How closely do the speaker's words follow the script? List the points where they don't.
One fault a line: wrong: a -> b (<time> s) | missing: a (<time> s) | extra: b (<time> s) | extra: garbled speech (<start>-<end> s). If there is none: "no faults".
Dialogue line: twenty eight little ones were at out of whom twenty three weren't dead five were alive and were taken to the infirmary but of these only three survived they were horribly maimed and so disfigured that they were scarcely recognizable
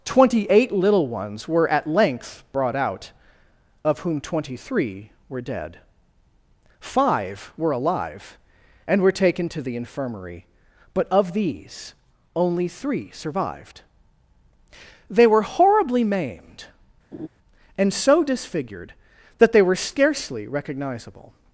extra: length brought (1.9 s)
wrong: weren't -> were (5.3 s)